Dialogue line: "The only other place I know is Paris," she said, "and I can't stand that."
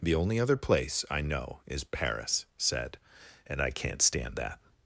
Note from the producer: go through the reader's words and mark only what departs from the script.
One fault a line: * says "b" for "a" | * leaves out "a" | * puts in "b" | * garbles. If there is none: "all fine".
* leaves out "she"